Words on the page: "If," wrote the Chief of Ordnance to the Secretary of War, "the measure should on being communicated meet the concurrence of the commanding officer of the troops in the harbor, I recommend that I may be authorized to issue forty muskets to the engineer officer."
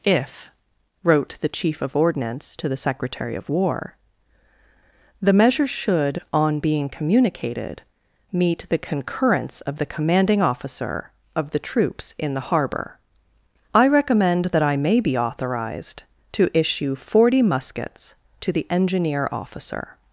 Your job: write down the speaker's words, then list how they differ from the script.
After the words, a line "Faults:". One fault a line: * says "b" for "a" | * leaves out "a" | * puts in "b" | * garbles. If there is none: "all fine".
"If," wrote the Chief of Ordnance to the Secretary of War, "the measure should on being communicated meet the concurrence of the commanding officer of the troops in the harbor, I recommend that I may be authorized to issue forty muskets to the engineer officer."
Faults:
all fine